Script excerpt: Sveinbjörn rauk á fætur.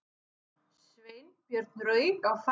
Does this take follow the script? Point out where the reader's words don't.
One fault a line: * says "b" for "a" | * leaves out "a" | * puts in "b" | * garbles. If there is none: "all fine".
all fine